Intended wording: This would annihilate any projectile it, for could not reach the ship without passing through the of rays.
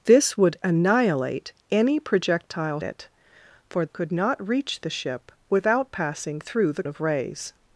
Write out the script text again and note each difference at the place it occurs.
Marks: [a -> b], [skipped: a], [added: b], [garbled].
This would annihilate any projectile it, for could not reach the ship without passing through the of rays.